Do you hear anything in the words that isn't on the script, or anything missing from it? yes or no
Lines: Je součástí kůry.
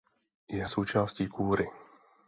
no